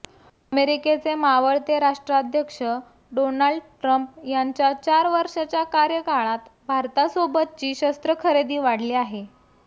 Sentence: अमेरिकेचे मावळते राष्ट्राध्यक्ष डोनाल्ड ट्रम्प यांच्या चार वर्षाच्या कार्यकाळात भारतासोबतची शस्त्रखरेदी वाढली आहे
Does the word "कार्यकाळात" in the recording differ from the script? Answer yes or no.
no